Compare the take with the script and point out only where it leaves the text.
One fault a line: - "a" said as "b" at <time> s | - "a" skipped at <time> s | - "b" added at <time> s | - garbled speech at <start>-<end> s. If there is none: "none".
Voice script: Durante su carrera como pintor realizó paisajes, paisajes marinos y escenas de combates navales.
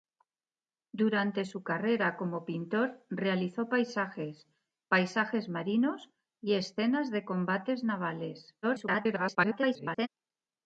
- garbled speech at 8.6-10.1 s